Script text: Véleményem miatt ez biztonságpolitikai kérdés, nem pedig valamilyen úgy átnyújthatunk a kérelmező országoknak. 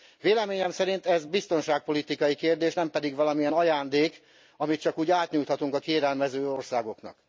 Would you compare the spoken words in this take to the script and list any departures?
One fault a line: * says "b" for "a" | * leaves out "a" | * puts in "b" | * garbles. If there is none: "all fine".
* says "szerint" for "miatt"
* puts in "ajándék amit csak"